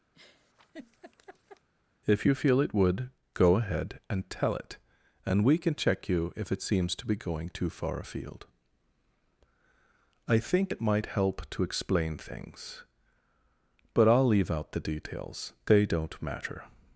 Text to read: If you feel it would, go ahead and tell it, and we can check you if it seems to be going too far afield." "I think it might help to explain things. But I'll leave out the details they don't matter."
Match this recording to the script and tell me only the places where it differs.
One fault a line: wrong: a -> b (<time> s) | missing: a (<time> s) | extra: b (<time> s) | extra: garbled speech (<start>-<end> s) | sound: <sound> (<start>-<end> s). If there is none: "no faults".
sound: laugh (0.1-1.7 s)